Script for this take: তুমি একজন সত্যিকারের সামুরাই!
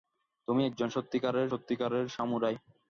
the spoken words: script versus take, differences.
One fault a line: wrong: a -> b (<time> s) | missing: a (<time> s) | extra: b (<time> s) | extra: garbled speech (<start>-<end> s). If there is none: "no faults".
extra: সত্যিকারের (1.5 s)